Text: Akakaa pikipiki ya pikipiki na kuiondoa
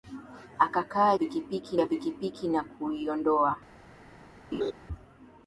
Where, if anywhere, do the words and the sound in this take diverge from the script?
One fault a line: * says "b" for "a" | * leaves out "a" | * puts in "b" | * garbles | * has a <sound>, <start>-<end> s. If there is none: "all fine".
* has a laugh, 4.5-4.7 s